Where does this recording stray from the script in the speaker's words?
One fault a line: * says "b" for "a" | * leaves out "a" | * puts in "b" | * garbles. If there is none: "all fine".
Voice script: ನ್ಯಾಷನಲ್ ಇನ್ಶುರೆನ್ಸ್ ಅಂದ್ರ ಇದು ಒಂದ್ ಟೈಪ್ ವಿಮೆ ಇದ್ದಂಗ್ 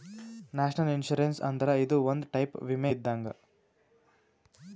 all fine